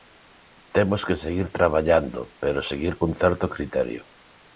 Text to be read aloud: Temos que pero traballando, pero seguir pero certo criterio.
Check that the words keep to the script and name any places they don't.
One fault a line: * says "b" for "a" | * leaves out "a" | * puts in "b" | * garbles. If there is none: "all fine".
* says "seguir" for "pero"
* says "cun" for "pero"